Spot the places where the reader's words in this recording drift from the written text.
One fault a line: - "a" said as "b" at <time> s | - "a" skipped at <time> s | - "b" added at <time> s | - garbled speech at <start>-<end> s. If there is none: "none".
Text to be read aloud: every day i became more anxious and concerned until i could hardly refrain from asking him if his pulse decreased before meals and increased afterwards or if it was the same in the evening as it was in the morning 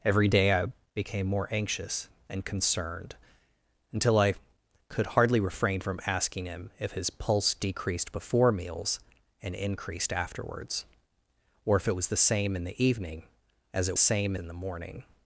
- "was" said as "same" at 14.0 s